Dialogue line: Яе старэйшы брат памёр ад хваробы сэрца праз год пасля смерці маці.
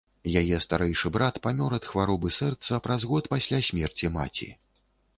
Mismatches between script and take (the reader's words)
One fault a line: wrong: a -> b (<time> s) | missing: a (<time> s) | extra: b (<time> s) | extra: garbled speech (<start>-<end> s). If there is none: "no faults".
no faults